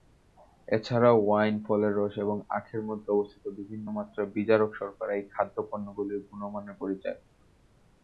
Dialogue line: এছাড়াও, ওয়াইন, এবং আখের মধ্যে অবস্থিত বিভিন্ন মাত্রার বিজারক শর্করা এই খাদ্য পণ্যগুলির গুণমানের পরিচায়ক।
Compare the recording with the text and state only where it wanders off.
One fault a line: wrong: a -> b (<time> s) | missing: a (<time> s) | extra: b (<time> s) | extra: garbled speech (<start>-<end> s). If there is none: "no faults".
extra: ফলের রস (1.6 s)